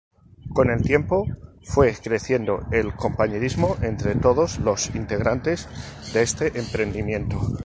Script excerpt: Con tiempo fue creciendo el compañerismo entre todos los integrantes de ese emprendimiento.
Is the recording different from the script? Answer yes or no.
yes